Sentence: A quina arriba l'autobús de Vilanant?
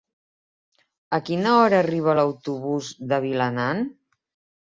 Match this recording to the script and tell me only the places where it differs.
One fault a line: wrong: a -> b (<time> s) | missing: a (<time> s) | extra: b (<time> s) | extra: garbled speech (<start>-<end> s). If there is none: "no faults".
extra: hora (1.6 s)